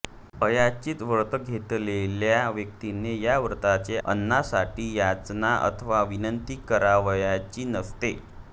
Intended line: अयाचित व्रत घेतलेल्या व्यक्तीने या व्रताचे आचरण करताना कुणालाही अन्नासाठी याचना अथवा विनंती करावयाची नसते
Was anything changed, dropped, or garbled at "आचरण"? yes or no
yes